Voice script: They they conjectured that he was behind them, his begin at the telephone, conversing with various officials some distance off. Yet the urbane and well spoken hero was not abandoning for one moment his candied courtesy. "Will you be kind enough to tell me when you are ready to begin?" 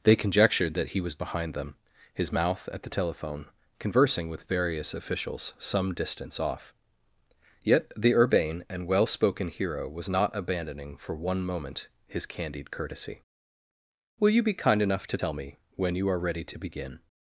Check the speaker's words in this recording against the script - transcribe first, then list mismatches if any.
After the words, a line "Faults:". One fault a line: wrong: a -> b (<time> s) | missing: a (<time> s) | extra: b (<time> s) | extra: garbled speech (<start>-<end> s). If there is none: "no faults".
They conjectured that he was behind them, his mouth at the telephone, conversing with various officials some distance off. Yet the urbane and well spoken hero was not abandoning for one moment his candied courtesy. "Will you be kind enough to tell me when you are ready to begin?"
Faults:
missing: they (0.1 s)
wrong: begin -> mouth (2.3 s)